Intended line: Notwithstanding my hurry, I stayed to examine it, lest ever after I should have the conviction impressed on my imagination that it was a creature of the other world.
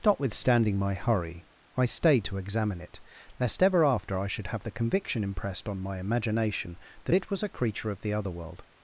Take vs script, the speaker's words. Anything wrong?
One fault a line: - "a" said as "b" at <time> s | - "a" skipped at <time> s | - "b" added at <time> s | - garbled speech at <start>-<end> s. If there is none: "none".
none